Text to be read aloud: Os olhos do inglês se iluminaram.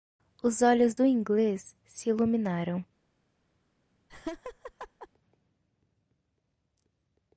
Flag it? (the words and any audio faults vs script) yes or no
yes